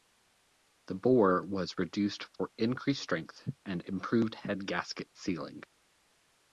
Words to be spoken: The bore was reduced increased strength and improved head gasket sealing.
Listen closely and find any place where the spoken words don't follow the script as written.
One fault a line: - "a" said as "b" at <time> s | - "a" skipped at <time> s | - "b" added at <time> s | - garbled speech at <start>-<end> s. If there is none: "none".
- "for" added at 2.4 s